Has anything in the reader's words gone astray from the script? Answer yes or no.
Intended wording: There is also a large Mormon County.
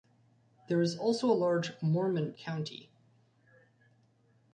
no